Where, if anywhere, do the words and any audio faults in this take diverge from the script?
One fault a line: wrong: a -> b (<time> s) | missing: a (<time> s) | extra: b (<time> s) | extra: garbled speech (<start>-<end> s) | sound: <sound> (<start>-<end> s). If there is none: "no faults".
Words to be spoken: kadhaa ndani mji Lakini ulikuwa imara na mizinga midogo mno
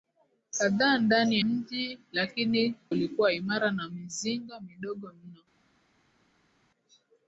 no faults